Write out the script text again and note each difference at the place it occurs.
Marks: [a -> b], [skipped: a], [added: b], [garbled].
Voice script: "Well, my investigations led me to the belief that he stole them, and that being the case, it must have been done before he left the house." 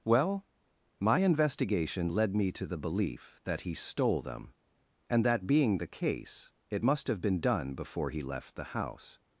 "Well, my [investigations -> investigation] led me to the belief that he stole them, and that being the case, it must have been done before he left the house."